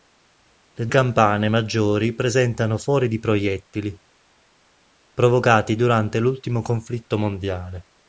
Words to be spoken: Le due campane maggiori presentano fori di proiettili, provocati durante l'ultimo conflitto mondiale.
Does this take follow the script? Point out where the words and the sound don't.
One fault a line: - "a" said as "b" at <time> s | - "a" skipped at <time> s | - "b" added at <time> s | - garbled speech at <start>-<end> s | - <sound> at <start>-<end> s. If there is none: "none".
- "due" skipped at 0.9 s